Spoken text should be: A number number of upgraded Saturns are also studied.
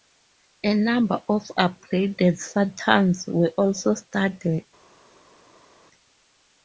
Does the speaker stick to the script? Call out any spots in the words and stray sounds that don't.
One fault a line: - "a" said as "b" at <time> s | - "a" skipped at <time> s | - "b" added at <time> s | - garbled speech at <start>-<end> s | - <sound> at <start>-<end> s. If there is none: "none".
- "number" skipped at 1.2 s
- "are" said as "were" at 3.3 s